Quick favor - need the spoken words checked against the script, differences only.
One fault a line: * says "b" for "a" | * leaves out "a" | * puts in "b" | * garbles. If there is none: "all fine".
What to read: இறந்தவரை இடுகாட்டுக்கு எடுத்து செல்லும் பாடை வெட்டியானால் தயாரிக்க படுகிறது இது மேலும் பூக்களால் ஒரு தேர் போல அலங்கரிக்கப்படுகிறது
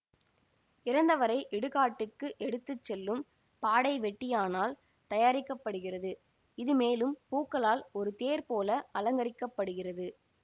all fine